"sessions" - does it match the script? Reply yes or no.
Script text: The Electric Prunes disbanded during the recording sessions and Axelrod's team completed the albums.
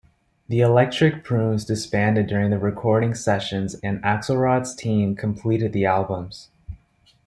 yes